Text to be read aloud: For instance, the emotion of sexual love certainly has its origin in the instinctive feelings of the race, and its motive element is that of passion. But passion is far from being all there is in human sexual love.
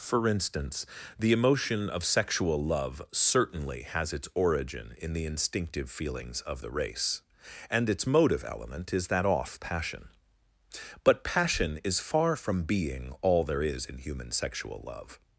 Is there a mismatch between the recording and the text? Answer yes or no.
yes